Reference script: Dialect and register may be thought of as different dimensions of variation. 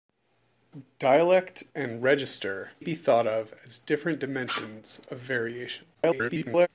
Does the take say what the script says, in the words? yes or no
no